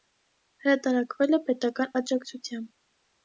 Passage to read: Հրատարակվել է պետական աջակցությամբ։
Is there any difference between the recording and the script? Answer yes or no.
no